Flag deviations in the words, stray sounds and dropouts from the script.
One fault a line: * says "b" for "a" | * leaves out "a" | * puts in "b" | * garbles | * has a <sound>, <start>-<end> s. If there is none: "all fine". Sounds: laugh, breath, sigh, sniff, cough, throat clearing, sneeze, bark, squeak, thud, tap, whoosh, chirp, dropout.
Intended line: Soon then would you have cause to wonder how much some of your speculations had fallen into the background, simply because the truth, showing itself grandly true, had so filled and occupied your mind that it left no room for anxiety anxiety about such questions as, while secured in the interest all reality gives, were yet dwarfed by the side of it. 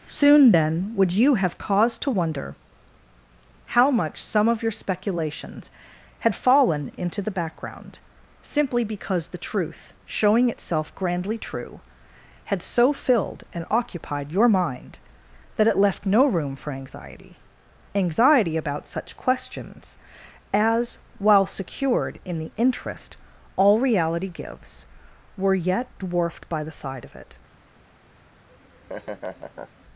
* has a laugh, 28.5-29.9 s